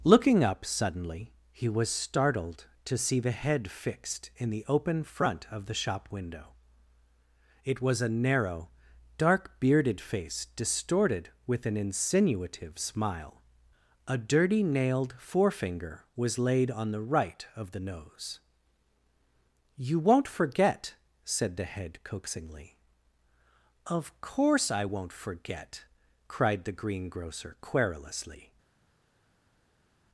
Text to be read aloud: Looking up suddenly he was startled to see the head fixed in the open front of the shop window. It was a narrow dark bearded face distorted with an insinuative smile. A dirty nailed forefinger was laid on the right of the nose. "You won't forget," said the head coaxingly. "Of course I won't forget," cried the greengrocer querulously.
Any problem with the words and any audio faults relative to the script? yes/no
no